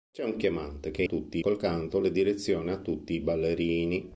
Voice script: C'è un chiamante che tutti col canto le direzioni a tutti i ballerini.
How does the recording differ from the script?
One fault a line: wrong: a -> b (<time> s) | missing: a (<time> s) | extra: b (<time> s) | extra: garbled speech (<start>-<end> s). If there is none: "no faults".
no faults